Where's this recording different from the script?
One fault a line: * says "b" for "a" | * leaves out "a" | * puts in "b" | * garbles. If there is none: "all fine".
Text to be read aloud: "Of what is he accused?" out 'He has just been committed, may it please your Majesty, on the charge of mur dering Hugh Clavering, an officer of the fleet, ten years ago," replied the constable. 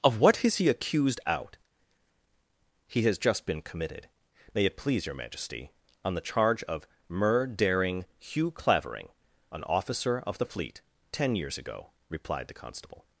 all fine